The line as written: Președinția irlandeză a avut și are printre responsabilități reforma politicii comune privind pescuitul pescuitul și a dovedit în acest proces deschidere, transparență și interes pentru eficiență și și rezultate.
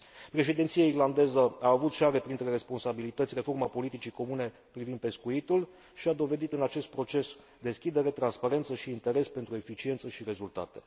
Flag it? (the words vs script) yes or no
yes